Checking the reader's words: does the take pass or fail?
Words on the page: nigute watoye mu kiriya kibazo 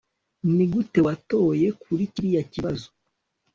fail